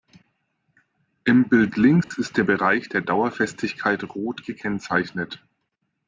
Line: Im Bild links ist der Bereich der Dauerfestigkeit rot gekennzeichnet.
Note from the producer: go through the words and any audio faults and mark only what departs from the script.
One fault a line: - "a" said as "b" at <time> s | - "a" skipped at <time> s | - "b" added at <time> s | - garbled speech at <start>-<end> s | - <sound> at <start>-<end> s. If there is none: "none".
- dropout at 2.0-2.1 s